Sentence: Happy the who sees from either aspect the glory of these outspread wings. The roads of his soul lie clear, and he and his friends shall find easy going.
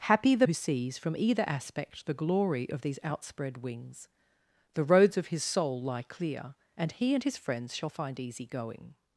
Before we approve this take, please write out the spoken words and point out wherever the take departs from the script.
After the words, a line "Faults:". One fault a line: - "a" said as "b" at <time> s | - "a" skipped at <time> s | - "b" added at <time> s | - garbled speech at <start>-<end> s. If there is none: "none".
Happy the who sees from either aspect the glory of these outspread wings. The roads of his soul lie clear, and he and his friends shall find easy going.
Faults:
none